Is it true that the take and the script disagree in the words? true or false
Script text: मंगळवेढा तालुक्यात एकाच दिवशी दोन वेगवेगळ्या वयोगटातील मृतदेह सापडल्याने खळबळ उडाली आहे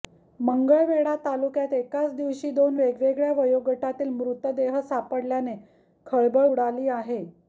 false